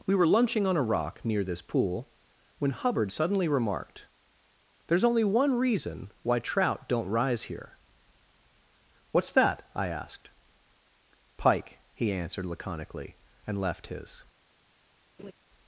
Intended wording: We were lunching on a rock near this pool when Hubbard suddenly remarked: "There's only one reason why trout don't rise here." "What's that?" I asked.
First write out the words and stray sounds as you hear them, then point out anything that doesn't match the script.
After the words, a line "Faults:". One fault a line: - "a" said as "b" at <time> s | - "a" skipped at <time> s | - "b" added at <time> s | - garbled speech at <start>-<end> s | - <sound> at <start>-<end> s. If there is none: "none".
We were lunching on a rock near this pool when Hubbard suddenly remarked: "There's only one reason why trout don't rise here." "What's that?" I asked. "Pike," he answered laconically, and left his
Faults:
- "Pike he answered laconically and left his" added at 11.4 s
- laugh at 15.2-15.3 s